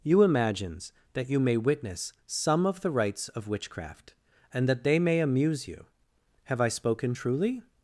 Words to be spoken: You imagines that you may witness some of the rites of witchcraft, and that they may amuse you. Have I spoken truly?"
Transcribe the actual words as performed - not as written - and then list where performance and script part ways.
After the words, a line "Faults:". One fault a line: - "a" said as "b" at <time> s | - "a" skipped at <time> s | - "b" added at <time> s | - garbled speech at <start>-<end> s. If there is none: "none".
You imagines that you may witness some of the rites of witchcraft, and that they may amuse you. Have I spoken truly?"
Faults:
none